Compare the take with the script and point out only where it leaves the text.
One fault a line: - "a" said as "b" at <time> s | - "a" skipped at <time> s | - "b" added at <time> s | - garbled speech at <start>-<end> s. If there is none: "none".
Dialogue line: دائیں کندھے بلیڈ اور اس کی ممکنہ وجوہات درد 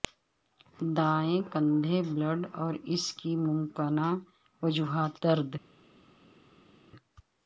none